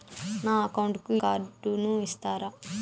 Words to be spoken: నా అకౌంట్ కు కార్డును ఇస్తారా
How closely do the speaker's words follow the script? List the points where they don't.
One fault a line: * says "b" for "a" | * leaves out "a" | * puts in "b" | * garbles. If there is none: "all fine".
all fine